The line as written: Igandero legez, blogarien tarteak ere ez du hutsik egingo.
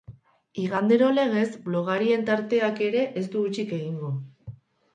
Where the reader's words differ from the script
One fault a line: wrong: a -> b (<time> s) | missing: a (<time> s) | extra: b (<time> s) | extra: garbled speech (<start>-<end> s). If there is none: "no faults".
no faults